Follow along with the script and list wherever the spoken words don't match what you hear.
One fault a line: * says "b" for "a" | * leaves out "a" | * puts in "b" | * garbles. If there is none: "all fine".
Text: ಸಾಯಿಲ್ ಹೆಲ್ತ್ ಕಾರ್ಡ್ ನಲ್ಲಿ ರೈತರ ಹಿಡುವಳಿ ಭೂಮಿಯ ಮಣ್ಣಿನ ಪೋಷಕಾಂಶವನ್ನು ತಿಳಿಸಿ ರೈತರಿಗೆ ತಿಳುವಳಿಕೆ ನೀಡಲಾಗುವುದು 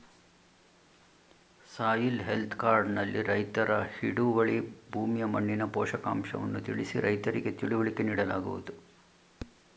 all fine